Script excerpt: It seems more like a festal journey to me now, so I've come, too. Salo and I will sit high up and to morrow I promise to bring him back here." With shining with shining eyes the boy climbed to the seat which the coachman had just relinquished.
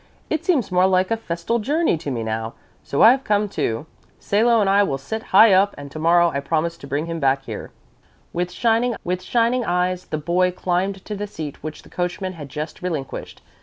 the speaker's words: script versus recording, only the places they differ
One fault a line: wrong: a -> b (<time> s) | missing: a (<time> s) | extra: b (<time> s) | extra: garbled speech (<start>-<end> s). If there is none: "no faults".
no faults